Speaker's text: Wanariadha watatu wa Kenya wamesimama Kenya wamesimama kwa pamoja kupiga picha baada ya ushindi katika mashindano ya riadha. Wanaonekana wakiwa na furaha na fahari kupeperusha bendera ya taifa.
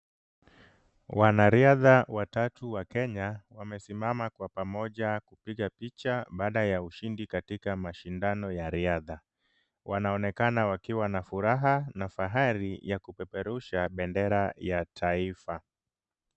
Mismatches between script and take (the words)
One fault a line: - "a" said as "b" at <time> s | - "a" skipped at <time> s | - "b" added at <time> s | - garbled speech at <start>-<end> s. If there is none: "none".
- "Kenya wamesimama" skipped at 4.3 s
- "ya" added at 12.8 s